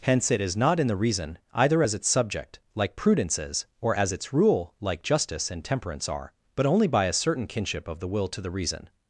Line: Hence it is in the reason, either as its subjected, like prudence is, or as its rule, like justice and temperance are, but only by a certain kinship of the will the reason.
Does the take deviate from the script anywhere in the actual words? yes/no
yes